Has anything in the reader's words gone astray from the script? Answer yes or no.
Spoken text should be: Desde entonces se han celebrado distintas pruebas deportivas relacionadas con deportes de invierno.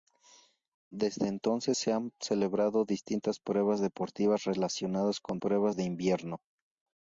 yes